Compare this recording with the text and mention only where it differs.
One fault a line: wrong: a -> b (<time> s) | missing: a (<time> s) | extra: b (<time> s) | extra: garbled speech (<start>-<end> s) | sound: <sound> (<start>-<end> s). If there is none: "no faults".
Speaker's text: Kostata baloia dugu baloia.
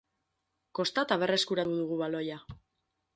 wrong: baloia -> berreskuratu (1.2 s)